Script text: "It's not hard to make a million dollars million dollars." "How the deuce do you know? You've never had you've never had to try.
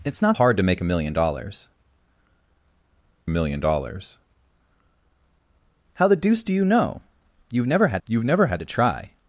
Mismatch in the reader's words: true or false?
false